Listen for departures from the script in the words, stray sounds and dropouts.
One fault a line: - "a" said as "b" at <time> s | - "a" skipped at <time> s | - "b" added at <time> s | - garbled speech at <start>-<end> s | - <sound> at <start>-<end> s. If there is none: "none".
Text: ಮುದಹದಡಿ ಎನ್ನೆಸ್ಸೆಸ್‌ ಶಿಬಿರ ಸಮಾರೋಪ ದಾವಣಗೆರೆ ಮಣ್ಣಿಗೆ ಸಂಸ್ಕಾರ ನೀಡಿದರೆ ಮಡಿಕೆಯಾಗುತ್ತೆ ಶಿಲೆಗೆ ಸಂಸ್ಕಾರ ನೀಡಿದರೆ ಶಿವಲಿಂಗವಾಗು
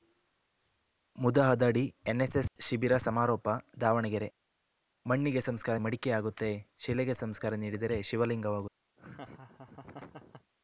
- "ನೀಡಿದರೆ" skipped at 5.8 s
- laugh at 9.0-10.5 s